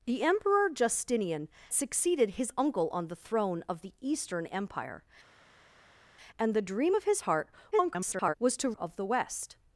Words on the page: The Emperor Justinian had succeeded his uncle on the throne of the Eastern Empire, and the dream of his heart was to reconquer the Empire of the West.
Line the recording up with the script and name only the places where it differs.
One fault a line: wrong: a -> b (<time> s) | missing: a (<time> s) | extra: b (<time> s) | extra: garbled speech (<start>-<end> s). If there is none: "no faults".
missing: had (1.5 s)
extra: garbled speech (7.7-8.3 s)
missing: reconquer the Empire (8.7 s)